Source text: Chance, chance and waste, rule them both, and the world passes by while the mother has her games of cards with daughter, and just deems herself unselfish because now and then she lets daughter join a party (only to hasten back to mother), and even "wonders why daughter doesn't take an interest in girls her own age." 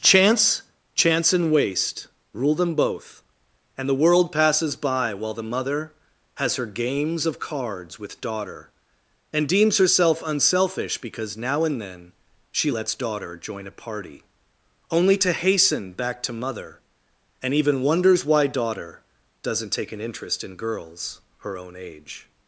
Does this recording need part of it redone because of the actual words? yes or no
yes